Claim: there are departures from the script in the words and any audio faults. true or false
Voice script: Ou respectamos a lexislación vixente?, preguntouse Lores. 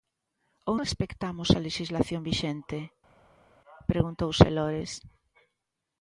false